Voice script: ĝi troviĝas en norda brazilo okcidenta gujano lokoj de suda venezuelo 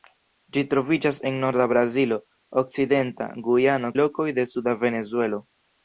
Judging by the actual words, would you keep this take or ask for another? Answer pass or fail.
pass